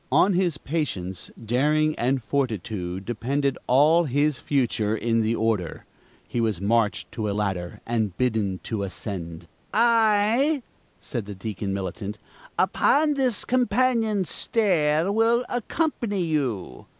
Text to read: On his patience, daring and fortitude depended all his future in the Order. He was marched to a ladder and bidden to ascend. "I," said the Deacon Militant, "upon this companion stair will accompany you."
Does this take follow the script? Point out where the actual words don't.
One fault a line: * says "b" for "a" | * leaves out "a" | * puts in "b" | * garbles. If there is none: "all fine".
all fine